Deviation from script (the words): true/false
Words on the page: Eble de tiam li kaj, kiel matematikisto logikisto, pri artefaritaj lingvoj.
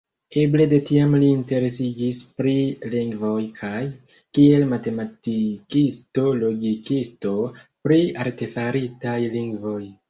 true